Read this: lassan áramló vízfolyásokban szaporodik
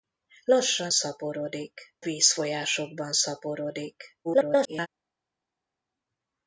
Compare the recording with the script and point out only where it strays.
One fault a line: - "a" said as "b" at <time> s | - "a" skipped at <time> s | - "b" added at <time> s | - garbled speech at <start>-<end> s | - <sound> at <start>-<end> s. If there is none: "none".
- "áramló" said as "szaporodik" at 0.9 s
- garbled speech at 4.2-4.9 s